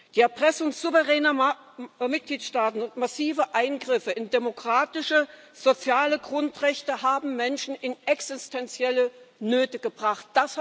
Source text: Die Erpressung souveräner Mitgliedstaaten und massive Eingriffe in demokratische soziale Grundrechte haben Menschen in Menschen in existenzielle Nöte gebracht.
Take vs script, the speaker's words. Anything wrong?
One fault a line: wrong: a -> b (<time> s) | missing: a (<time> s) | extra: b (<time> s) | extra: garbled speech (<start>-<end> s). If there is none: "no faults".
missing: Menschen in (7.9 s)